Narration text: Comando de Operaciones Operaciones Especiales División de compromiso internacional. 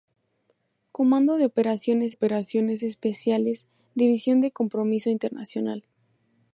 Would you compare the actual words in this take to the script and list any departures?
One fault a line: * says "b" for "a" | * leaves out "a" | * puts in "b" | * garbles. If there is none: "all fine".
all fine